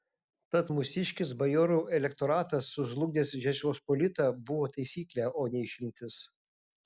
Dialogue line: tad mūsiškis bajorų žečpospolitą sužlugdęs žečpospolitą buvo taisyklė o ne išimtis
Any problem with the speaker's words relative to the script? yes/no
yes